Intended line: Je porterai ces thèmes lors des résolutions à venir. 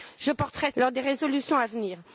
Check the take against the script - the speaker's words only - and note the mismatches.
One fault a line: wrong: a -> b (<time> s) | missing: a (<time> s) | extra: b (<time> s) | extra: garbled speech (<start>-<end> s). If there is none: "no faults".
missing: ces thèmes (0.7 s)